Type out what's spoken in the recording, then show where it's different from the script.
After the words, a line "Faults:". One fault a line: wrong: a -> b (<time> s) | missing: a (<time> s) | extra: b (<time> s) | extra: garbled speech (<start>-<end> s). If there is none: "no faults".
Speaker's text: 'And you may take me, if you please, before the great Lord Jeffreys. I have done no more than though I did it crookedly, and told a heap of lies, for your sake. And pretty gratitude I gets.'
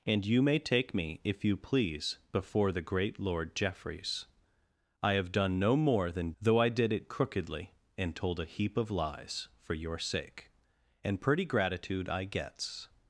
'And you may take me, if you please, before the great Lord Jeffreys. I have done no more than though I did it crookedly, and told a heap of lies, for your sake. And pretty gratitude I gets.'
Faults:
no faults